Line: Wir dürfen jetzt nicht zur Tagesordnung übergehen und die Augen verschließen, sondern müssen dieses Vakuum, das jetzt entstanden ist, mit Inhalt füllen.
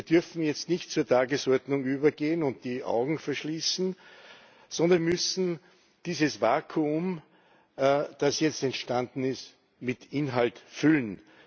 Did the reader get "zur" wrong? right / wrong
right